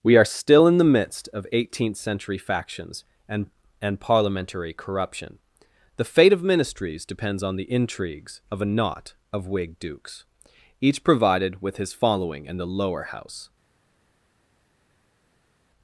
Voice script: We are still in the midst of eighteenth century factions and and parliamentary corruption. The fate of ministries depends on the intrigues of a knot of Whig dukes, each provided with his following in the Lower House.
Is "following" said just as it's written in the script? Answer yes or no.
yes